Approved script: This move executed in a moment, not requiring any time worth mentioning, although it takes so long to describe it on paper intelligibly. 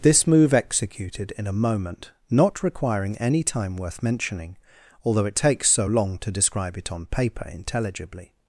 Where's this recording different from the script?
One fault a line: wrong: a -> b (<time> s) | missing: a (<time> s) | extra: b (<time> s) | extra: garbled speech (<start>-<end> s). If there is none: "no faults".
no faults